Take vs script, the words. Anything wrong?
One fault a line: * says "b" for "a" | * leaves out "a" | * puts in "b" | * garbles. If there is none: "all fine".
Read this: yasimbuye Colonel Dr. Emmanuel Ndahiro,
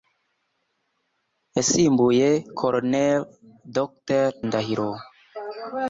* leaves out "Emmanuel"